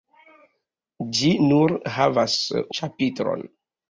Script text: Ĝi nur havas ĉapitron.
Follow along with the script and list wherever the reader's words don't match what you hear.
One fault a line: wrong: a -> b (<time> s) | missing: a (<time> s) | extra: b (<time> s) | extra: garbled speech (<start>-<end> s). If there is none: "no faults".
no faults